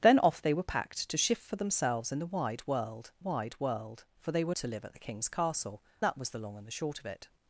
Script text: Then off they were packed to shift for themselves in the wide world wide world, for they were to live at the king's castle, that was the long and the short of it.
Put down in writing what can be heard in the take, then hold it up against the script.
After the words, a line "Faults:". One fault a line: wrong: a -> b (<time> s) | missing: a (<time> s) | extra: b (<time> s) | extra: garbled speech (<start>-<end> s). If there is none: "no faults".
Then off they were packed to shift for themselves in the wide world wide world, for they were to live at the king's castle, that was the long and the short of it.
Faults:
no faults